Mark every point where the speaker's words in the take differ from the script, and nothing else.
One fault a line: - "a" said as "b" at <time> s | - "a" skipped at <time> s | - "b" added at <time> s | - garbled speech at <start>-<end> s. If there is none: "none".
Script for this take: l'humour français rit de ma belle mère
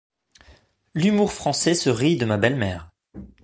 - "se" added at 1.7 s